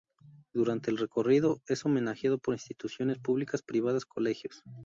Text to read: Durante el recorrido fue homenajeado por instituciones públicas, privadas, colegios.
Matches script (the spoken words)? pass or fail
fail